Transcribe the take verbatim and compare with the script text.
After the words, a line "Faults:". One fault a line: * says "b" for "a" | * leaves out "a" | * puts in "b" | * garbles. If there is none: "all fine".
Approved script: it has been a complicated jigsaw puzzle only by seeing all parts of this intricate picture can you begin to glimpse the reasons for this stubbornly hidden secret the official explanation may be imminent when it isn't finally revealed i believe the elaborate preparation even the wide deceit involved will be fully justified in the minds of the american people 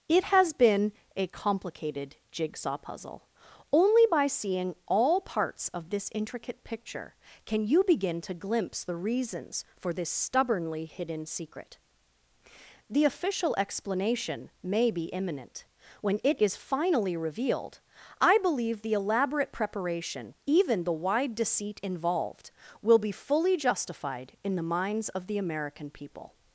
it has been a complicated jigsaw puzzle only by seeing all parts of this intricate picture can you begin to glimpse the reasons for this stubbornly hidden secret the official explanation may be imminent when it is finally revealed i believe the elaborate preparation even the wide deceit involved will be fully justified in the minds of the american people
Faults:
* says "is" for "isn't"